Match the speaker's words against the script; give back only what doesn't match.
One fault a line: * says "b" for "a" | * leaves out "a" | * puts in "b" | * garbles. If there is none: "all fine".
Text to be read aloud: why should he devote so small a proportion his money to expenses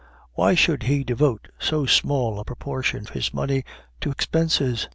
all fine